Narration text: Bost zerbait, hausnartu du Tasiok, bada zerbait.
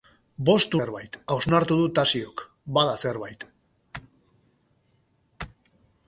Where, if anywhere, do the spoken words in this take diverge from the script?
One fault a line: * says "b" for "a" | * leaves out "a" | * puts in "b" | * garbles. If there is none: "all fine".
all fine